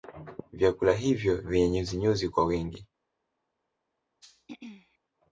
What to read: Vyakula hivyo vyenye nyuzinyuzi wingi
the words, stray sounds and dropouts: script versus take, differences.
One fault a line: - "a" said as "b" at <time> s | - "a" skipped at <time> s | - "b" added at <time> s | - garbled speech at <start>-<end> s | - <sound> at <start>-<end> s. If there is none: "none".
- "kwa" added at 2.3 s
- throat clearing at 4.2-5.0 s